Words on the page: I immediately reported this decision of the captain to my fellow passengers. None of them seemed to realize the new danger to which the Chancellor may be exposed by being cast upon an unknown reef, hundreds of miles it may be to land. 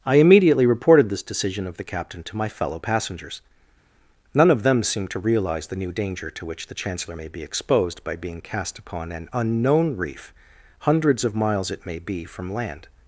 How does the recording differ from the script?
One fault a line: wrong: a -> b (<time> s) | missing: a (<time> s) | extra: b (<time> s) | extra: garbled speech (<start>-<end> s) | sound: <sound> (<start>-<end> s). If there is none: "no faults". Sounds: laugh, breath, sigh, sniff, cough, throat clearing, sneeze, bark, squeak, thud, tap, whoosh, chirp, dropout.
wrong: to -> from (12.2 s)